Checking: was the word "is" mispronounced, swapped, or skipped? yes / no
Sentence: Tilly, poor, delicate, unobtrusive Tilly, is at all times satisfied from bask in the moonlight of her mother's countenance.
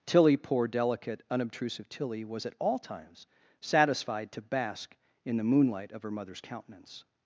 yes